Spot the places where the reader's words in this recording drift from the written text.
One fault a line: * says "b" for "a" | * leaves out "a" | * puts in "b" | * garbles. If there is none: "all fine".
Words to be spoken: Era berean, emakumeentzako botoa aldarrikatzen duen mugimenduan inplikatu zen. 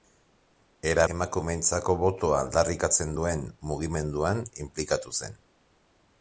* leaves out "berean"